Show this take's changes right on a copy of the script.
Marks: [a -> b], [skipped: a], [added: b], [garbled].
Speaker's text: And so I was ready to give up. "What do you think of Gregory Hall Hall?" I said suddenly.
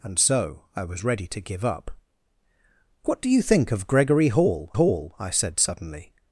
And so I was ready to give up. "What do you think of Gregory Hall Hall?" I said suddenly.